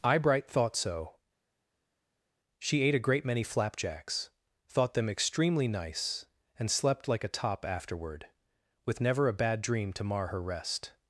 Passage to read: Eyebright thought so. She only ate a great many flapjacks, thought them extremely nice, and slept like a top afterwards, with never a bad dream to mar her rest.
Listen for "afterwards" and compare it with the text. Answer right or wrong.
wrong